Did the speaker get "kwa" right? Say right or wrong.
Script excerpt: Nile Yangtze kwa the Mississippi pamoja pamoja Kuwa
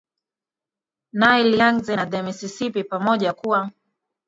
wrong